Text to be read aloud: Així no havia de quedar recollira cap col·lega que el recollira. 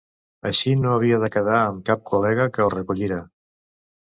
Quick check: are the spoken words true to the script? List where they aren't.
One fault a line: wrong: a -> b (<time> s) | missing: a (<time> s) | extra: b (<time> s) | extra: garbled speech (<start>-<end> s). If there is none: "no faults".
wrong: recollira -> amb (1.6 s)